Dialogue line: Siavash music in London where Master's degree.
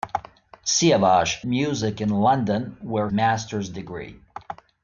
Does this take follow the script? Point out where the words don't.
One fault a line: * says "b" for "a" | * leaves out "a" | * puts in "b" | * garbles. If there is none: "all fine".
all fine